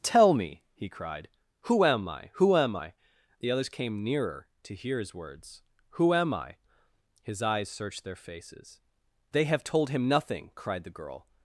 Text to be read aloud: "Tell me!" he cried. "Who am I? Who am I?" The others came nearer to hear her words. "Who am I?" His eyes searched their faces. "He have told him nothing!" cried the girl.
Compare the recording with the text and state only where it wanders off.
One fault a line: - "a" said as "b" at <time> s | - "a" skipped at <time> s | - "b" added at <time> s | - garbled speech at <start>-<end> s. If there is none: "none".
- "her" said as "his" at 5.0 s
- "He" said as "They" at 9.3 s